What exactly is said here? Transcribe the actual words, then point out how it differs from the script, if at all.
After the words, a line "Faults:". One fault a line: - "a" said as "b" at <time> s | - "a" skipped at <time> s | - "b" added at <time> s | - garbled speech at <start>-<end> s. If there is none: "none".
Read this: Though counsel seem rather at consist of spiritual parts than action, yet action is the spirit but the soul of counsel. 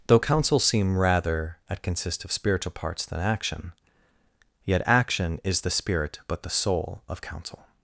Though counsel seem rather at consist of spiritual parts than action, yet action is the spirit but the soul of counsel.
Faults:
none